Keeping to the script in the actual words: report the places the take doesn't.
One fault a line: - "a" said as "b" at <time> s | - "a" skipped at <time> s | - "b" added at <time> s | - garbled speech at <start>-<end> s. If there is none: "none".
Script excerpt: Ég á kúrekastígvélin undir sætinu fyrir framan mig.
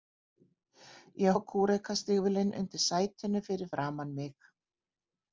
none